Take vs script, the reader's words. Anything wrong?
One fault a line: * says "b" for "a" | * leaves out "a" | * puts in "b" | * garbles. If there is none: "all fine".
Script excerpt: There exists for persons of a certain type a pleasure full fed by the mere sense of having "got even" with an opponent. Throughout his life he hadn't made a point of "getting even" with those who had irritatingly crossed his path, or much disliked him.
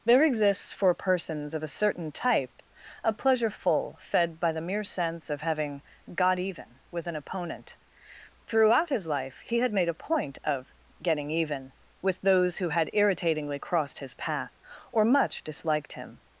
* says "had" for "hadn't"